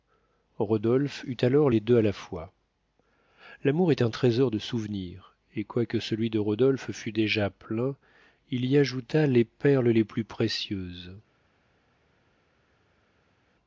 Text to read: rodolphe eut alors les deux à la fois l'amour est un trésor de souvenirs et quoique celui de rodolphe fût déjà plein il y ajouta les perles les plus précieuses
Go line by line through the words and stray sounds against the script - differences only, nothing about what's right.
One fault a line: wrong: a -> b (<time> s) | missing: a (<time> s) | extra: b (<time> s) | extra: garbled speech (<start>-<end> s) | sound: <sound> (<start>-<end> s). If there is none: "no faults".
no faults